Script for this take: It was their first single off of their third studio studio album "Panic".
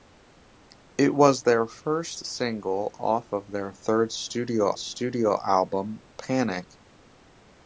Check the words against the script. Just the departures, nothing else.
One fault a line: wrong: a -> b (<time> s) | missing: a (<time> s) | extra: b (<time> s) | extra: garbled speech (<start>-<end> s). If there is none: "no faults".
no faults